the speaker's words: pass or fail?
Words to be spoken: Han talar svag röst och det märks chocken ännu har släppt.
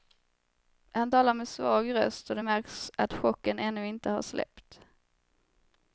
fail